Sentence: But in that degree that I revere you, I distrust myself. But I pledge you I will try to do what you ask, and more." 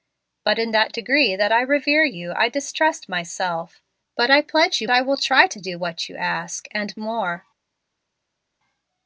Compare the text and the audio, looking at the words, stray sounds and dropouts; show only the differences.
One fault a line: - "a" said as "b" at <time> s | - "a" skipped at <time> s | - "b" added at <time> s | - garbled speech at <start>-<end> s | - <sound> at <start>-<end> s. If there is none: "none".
none